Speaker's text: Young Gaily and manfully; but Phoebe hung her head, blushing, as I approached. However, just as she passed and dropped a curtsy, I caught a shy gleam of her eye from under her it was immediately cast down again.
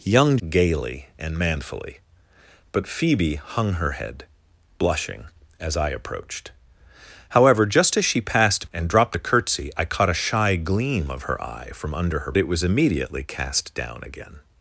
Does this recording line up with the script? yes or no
yes